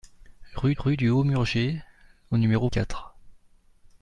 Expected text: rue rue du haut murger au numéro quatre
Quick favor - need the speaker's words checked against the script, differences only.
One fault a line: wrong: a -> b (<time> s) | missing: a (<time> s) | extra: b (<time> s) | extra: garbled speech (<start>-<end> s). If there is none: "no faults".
no faults